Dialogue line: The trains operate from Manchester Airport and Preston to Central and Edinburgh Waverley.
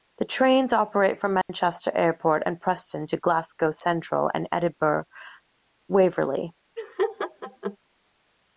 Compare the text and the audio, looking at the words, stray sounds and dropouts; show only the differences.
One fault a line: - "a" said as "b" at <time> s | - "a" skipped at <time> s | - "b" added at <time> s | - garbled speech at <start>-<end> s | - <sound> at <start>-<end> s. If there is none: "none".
- dropout at 1.4-1.5 s
- "Glasgow" added at 3.2 s
- laugh at 6.8-7.8 s